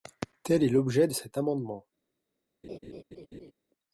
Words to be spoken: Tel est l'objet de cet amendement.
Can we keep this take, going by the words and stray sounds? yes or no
no